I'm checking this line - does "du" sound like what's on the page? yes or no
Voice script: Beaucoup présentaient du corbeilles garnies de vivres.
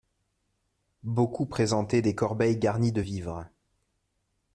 no